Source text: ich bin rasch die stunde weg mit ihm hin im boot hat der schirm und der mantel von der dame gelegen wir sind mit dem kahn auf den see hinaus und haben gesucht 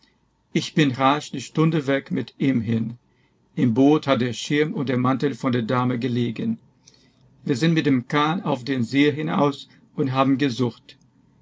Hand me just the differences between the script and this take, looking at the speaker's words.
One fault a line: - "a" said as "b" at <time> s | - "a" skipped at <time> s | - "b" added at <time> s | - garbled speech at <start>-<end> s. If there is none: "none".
none